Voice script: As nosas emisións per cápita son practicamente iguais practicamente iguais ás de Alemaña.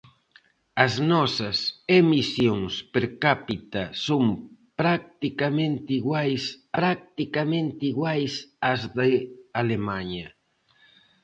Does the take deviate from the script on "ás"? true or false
false